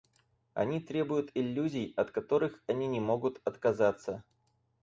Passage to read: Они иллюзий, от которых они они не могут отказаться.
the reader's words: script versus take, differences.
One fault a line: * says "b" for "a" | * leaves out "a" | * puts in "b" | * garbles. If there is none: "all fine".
* puts in "требуют"
* leaves out "они"